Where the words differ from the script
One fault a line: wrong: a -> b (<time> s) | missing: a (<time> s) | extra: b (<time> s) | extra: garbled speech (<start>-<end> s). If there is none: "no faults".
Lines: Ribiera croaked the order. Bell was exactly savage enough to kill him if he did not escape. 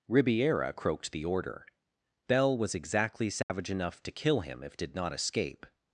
missing: he (4.8 s)